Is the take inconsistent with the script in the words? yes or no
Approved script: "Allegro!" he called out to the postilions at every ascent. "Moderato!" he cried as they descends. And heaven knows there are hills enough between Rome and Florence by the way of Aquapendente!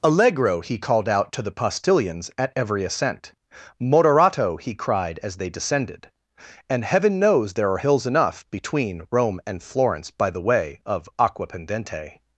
yes